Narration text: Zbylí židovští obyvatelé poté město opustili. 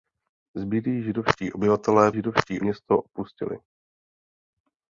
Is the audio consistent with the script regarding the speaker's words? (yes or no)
no